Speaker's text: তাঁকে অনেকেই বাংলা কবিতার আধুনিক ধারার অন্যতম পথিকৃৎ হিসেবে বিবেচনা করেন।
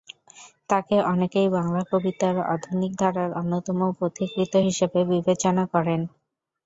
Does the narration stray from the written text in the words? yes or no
no